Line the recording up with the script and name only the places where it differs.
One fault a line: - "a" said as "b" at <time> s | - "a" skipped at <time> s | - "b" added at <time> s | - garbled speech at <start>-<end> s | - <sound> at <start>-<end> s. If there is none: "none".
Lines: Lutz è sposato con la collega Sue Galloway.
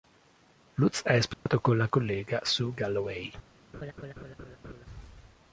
- dropout at 1.3-1.5 s
- laugh at 3.7-4.9 s